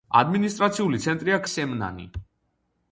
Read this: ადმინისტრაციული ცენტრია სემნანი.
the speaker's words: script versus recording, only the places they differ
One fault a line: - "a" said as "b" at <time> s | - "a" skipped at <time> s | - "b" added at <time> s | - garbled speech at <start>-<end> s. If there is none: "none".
none